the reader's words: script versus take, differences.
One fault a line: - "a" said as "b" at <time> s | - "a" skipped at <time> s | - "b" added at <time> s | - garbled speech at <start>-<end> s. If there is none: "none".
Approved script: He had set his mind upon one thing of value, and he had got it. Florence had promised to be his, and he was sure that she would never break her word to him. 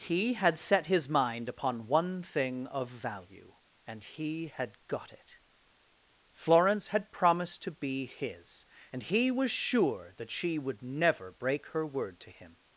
none